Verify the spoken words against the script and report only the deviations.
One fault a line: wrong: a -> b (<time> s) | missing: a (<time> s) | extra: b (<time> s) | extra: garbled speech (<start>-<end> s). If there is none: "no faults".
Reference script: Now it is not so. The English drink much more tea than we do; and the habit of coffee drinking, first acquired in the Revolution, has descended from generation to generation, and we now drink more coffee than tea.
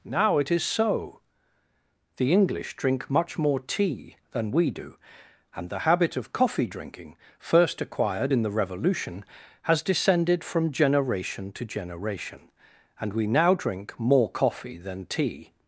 missing: not (0.6 s)